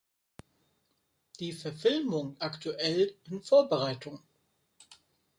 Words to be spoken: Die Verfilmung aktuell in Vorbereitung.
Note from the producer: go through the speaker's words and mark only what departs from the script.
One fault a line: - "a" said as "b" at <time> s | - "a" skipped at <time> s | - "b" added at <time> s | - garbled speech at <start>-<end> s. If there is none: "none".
none